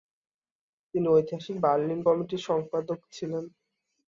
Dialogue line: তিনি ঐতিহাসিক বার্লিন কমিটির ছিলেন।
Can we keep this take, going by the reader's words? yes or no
no